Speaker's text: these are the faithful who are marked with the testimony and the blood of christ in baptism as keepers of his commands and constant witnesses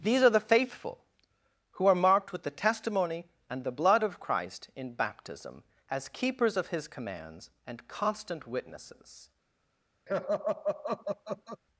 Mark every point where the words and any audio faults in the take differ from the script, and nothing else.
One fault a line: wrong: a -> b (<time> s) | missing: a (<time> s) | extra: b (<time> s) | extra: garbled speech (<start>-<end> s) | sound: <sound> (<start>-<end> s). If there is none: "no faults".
sound: laugh (10.1-11.6 s)